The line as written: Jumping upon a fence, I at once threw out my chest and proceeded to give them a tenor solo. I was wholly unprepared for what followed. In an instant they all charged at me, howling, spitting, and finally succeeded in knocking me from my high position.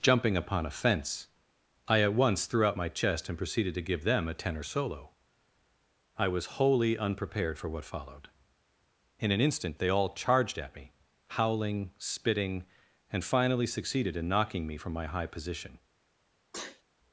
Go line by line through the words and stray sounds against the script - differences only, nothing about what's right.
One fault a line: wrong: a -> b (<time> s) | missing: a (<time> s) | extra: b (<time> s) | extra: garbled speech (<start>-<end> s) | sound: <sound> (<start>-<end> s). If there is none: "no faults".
sound: sneeze (16.5-16.8 s)